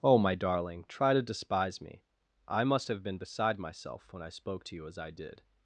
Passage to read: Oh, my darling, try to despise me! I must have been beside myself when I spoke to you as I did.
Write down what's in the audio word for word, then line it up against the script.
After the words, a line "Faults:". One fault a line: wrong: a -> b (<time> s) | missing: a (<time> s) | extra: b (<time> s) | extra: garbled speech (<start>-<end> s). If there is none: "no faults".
Oh, my darling, try to despise me! I must have been beside myself when I spoke to you as I did.
Faults:
no faults